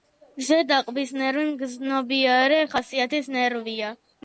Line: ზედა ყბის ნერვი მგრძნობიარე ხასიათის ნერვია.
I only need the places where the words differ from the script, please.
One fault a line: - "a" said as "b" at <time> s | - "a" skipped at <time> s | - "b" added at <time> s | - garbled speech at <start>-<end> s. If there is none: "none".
none